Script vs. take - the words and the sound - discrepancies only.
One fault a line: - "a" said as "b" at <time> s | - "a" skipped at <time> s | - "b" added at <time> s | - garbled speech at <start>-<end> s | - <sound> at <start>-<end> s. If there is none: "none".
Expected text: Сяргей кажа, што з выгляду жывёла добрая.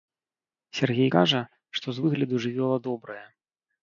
none